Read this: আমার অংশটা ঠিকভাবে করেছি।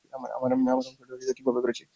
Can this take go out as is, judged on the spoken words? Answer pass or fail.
pass